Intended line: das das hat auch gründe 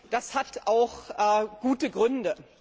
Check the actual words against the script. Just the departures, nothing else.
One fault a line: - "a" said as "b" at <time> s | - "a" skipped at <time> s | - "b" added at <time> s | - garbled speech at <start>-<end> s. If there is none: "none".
- "das" skipped at 0.3 s
- "gute" added at 1.6 s